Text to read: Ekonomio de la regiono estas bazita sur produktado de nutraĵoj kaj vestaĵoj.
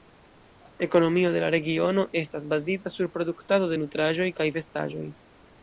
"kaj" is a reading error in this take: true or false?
false